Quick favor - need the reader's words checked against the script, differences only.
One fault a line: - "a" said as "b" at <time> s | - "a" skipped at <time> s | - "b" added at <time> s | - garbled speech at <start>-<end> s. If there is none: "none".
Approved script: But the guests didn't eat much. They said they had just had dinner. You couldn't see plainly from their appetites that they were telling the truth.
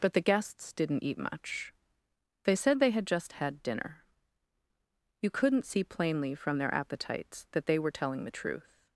none